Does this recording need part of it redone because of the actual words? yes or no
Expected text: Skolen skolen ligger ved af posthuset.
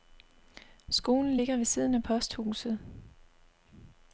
yes